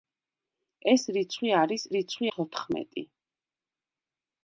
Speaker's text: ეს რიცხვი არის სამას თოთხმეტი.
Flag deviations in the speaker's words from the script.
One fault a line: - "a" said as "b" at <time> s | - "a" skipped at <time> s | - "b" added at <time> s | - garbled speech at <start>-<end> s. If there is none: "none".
- "სამას" said as "რიცხვი" at 2.0 s